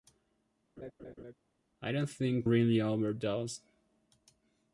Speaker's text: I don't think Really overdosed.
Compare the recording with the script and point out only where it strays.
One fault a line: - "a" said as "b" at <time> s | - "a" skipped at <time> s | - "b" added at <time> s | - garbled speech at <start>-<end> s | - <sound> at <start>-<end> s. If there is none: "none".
- laugh at 0.8-1.3 s